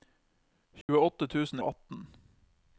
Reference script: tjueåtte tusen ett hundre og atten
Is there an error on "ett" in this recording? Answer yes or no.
yes